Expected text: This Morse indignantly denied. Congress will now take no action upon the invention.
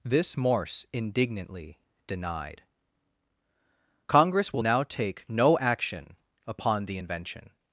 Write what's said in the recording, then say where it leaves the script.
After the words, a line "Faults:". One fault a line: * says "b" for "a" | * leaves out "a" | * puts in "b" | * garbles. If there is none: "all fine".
This Morse indignantly denied. Congress will now take no action upon the invention.
Faults:
all fine